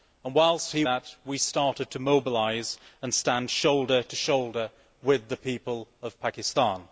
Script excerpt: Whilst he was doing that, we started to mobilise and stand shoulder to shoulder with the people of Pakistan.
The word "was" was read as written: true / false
false